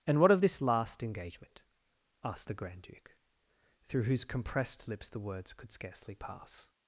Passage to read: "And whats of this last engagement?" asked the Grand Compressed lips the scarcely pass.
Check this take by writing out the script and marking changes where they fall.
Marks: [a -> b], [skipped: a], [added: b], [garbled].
"And [whats -> what] of this last engagement?" asked the Grand [added: Duke through whose] Compressed lips the [added: words could] scarcely pass.